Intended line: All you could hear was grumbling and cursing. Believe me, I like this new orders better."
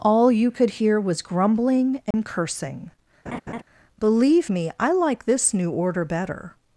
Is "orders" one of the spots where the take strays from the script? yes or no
yes